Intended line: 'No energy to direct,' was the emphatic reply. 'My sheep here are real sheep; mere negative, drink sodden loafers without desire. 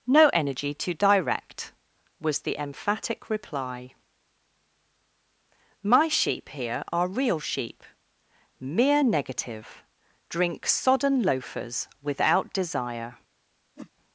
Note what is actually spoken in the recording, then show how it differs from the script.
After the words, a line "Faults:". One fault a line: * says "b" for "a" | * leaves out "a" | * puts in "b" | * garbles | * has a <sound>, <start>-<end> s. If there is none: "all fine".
'No energy to direct,' was the emphatic reply. 'My sheep here are real sheep; mere negative, drink sodden loafers without desire.
Faults:
* has a whoosh, 13.8-13.9 s